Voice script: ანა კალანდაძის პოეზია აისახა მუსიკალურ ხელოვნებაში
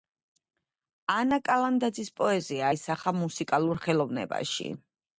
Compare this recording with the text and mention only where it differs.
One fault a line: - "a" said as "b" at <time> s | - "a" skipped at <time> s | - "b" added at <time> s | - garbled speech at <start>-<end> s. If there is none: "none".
none